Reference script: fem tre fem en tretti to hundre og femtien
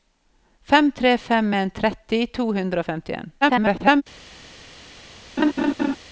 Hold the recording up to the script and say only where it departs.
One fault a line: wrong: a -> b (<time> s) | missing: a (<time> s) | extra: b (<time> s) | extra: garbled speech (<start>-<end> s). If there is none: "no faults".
extra: garbled speech (3.4-4.0 s)